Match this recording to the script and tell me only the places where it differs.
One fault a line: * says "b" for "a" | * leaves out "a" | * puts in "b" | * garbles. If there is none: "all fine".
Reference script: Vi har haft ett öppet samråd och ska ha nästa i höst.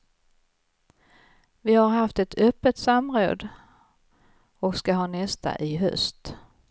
all fine